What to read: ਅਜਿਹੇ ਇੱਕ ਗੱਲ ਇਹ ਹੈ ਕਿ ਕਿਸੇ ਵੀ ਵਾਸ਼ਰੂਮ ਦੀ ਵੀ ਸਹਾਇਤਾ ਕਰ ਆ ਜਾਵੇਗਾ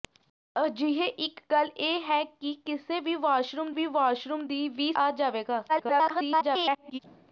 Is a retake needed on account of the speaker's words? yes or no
yes